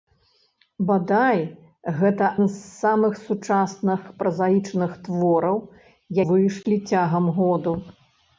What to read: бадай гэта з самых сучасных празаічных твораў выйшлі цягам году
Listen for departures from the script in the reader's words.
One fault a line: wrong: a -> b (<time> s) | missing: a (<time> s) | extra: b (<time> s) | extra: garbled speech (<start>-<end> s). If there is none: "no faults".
no faults